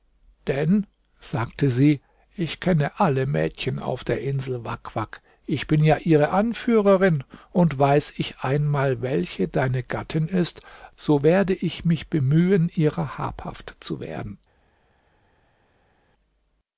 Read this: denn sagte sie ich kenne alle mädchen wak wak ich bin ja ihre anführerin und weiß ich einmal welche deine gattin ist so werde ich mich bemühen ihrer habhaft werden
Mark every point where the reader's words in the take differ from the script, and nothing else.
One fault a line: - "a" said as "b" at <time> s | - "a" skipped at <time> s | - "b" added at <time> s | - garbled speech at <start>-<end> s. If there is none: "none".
- "auf der insel" added at 3.8 s
- "zu" added at 13.8 s